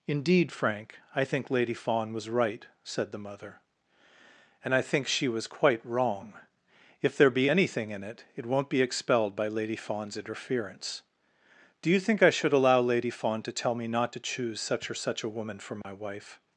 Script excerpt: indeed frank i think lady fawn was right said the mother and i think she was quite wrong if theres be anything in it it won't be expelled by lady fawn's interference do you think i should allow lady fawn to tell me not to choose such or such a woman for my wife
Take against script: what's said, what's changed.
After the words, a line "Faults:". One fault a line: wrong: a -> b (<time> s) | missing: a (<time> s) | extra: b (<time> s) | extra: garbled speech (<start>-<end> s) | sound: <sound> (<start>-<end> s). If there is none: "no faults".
indeed frank i think lady fawn was right said the mother and i think she was quite wrong if there be anything in it it won't be expelled by lady fawn's interference do you think i should allow lady fawn to tell me not to choose such or such a woman for my wife
Faults:
wrong: theres -> there (7.2 s)
sound: dropout (15.8-15.8 s)